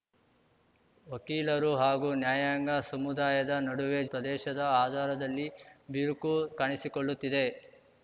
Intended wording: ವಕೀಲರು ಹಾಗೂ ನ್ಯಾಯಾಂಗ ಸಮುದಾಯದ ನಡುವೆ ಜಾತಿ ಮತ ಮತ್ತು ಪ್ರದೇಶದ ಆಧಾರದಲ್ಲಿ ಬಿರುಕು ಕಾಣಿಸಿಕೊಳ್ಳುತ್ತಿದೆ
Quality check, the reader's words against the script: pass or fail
fail